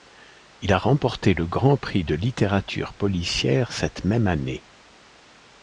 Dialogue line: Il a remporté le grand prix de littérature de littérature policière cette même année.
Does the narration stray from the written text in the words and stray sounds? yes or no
yes